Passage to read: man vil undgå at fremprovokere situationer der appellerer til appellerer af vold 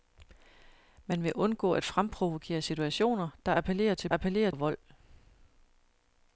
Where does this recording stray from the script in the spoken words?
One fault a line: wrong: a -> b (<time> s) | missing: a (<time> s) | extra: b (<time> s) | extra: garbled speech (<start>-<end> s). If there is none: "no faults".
no faults